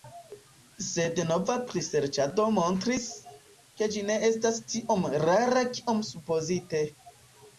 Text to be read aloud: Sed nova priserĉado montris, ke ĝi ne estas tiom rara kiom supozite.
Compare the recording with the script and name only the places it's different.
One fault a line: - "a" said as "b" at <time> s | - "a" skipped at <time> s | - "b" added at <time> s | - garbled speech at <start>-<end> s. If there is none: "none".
none